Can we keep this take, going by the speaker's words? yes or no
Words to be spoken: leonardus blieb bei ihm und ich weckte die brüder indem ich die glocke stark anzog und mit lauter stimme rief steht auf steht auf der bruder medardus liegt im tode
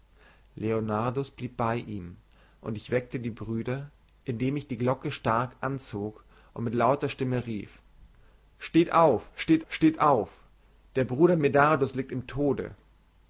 no